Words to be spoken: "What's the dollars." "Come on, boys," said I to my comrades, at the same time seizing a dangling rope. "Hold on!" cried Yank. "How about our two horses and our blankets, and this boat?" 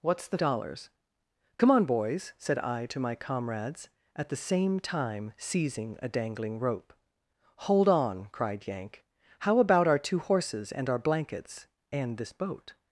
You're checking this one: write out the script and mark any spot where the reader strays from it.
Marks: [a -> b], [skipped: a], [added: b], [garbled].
"What's the dollars." "Come on, boys," said I to my comrades, at the same time seizing a dangling rope. "Hold on!" cried Yank. "How about our two horses and our blankets, and this boat?"